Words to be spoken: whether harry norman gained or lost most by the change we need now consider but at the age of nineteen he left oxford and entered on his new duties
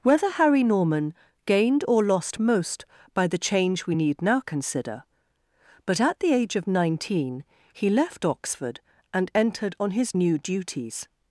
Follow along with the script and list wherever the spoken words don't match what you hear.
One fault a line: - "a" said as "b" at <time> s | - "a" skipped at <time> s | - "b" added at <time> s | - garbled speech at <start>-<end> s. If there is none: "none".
none